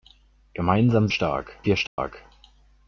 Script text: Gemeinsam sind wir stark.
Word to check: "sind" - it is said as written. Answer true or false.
false